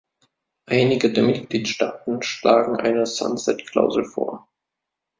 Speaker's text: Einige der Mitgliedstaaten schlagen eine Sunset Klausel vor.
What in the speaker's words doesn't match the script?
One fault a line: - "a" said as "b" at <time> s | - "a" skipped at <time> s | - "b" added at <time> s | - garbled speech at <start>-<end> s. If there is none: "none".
none